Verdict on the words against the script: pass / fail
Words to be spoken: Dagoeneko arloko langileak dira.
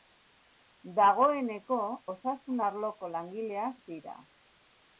fail